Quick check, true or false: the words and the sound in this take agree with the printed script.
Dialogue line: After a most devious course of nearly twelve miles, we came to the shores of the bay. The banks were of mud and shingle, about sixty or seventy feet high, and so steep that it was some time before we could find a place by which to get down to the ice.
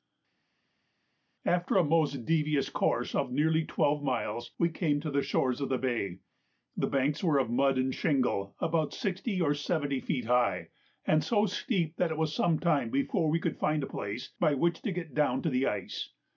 true